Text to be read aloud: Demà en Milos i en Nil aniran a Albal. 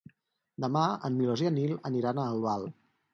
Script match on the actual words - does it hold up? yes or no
yes